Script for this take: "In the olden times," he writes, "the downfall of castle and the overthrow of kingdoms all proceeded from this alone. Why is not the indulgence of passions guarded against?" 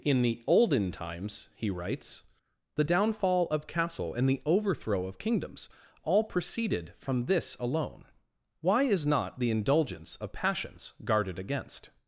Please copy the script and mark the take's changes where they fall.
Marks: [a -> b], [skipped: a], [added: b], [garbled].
"In the olden times," he writes, "the downfall of castle and the overthrow of kingdoms all proceeded from this alone. Why is not the indulgence of passions guarded against?"